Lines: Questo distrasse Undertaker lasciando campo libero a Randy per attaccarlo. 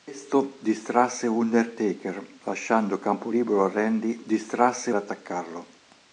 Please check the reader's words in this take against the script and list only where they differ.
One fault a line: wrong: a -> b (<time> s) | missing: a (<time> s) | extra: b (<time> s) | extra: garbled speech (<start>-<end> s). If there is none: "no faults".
wrong: per -> distrasse (4.2 s)